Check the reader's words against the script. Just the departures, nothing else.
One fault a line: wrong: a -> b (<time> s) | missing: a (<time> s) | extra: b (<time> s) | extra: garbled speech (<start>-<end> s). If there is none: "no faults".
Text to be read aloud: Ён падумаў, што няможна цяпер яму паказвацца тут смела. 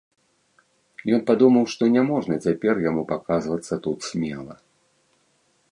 no faults